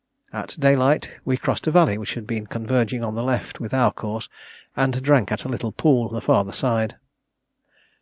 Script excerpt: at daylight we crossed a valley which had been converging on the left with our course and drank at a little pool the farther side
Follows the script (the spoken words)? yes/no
yes